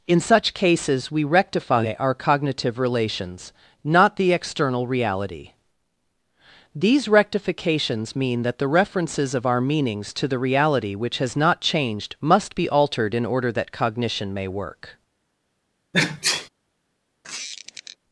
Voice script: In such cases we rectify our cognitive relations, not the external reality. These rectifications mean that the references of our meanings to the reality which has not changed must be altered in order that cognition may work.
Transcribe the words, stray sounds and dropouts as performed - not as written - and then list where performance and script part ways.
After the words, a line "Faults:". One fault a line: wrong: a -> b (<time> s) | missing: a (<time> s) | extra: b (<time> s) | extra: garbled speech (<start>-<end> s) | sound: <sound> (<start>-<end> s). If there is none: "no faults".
In such cases we rectify our cognitive relations, not the external reality. These rectifications mean that the references of our meanings to the reality which has not changed must be altered in order that cognition may work.
Faults:
sound: sneeze (15.9-16.5 s)
sound: squeak (17.2-18.0 s)